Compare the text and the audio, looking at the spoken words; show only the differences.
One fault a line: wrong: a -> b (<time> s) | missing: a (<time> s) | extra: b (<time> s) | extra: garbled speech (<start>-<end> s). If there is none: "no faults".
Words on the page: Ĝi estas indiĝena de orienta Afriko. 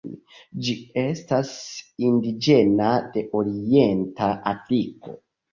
no faults